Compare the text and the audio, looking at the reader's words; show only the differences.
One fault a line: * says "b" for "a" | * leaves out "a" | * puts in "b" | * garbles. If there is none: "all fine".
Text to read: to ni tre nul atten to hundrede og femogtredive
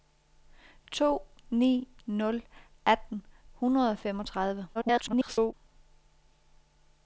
* leaves out "tre"
* leaves out "to"
* garbles